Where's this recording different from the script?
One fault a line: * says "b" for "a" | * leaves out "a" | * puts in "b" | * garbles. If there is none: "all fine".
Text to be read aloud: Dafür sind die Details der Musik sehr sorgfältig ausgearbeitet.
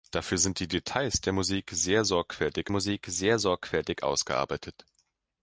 * puts in "Musik sehr sorgfältig"